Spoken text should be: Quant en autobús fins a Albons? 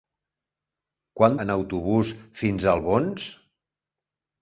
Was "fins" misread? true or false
false